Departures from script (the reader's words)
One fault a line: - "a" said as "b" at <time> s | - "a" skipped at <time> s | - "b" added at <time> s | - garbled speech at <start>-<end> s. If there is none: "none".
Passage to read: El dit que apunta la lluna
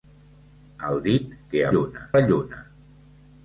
- "apunta" said as "lluna" at 1.7 s